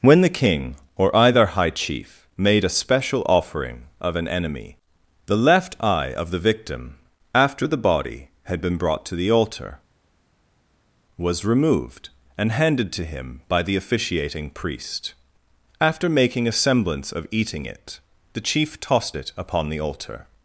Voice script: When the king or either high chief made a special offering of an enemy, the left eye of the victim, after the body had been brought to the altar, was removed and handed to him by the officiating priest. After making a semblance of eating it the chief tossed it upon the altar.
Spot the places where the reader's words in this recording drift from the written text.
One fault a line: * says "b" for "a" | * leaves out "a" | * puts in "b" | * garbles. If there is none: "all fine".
all fine